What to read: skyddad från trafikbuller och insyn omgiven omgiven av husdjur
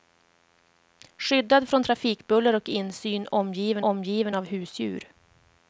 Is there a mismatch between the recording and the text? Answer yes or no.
no